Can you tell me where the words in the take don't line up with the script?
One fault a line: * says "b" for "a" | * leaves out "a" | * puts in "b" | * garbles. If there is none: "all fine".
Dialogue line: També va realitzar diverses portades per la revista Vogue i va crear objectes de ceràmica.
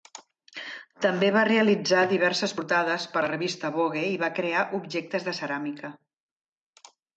all fine